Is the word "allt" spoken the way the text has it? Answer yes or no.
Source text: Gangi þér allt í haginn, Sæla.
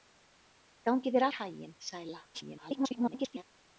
no